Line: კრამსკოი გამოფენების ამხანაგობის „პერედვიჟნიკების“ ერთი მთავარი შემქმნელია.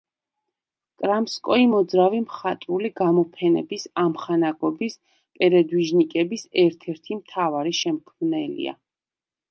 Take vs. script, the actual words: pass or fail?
fail